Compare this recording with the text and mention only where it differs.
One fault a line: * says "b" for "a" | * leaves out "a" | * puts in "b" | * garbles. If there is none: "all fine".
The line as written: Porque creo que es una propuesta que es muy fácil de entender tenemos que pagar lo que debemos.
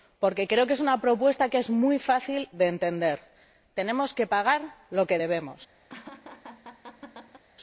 all fine